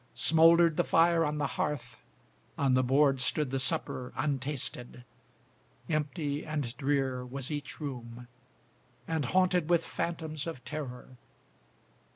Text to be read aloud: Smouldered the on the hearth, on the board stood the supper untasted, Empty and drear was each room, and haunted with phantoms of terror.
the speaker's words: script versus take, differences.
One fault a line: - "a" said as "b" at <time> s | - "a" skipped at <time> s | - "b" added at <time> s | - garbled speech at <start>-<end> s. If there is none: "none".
- "fire" added at 0.8 s